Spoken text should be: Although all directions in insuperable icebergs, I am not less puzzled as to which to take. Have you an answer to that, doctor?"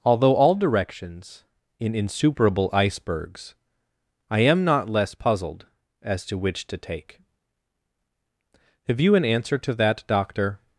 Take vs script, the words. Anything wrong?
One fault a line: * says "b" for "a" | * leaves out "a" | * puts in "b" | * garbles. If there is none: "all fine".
all fine